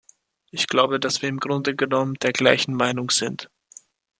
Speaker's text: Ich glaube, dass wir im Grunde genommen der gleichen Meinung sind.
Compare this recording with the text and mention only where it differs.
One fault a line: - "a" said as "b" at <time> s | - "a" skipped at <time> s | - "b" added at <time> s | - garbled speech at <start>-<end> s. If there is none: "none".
none